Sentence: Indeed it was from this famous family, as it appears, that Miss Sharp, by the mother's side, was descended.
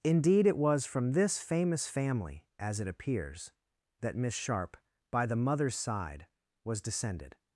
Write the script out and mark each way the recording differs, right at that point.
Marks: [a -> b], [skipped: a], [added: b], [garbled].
Indeed it was from this famous family, as it appears, that Miss Sharp, by the mother's side, was descended.